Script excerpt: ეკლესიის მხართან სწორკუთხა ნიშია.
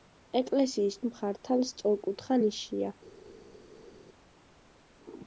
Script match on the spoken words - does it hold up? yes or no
yes